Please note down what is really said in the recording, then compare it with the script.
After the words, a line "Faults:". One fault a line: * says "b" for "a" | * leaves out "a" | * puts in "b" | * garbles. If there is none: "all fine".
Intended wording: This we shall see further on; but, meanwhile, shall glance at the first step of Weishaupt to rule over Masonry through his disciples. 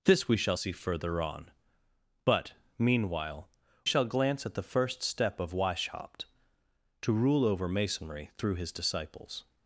This we shall see further on; but, meanwhile, shall glance at the first step of Weishaupt to rule over Masonry through his disciples.
Faults:
all fine